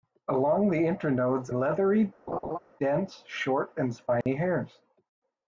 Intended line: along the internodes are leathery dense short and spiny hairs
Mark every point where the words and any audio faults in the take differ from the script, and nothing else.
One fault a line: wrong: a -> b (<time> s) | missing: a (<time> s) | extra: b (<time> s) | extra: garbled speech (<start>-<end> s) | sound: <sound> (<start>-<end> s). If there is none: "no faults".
missing: are (1.5 s)
sound: laugh (2.3-2.6 s)
sound: dropout (4.2-4.3 s)